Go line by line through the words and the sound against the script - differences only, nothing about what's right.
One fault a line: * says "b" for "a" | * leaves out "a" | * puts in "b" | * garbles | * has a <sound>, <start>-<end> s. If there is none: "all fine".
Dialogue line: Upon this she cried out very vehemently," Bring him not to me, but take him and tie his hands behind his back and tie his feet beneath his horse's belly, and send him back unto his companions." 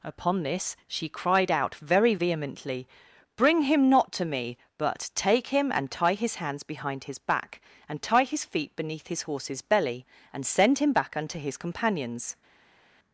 all fine